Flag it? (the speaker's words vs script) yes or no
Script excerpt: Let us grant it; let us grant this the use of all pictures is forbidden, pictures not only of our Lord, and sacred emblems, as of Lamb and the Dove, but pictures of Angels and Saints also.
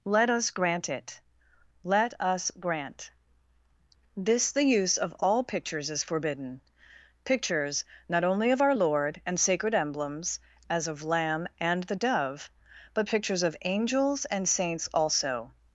no